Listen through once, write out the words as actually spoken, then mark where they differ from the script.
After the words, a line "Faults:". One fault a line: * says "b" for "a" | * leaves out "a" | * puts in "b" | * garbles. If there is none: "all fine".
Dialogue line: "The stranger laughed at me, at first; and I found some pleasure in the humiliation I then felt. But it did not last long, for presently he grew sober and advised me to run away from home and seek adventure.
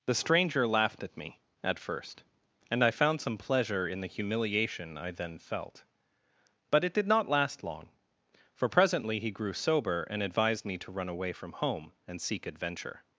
"The stranger laughed at me, at first; and I found some pleasure in the humiliation I then felt. But it did not last long, for presently he grew sober and advised me to run away from home and seek adventure.
Faults:
all fine